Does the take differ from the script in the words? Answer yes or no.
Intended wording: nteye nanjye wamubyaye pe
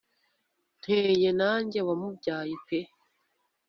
no